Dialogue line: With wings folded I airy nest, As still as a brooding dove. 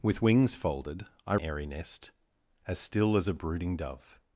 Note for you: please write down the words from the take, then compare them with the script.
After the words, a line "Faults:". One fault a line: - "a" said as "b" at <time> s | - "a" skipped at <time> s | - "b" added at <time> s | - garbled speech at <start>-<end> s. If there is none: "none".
With wings folded I airy nest, As still as a brooding dove.
Faults:
none